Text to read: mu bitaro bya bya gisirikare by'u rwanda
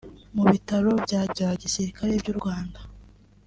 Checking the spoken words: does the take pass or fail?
pass